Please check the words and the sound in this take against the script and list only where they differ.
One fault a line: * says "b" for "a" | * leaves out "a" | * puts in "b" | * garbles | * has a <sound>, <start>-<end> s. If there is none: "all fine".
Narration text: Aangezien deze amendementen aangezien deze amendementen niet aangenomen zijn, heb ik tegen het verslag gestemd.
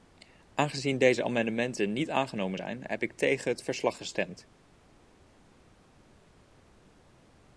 * leaves out "aangezien deze amendementen"